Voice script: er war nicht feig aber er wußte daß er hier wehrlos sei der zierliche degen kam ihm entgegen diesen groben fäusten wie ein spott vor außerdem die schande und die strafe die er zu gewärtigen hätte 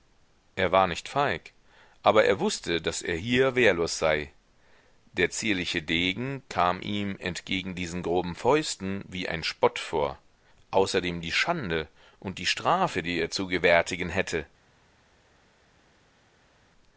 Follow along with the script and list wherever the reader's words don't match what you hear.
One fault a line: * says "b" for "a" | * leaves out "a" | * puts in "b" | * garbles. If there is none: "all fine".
all fine